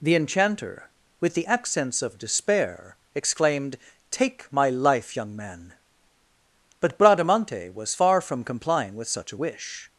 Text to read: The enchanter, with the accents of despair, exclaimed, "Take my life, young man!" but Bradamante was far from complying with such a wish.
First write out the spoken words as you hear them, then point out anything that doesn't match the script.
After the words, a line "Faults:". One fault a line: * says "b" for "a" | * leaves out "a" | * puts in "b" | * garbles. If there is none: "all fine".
The enchanter, with the accents of despair, exclaimed, "Take my life, young man!" but Bradamante was far from complying with such a wish.
Faults:
all fine